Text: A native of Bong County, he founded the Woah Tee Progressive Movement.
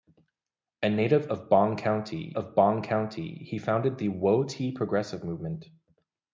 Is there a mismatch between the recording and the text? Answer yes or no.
yes